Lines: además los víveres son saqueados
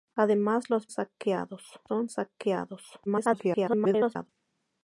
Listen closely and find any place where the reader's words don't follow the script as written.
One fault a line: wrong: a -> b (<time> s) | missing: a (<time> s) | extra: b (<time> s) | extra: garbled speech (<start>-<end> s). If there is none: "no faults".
wrong: víveres -> saqueados (0.9 s)
extra: garbled speech (3.1-4.3 s)